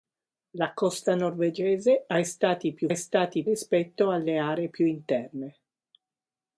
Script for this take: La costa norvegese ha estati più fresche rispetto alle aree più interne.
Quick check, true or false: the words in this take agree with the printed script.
false